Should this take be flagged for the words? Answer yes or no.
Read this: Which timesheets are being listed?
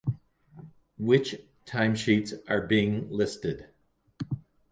no